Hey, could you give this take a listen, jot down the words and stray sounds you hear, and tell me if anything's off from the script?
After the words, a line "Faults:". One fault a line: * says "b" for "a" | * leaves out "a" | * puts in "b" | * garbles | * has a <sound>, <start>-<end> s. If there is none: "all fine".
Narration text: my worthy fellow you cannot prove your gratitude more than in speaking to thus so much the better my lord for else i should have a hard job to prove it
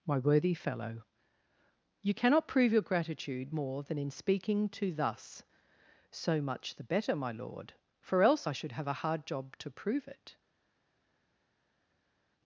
my worthy fellow you cannot prove your gratitude more than in speaking to thus so much the better my lord for else i should have a hard job to prove it
Faults:
all fine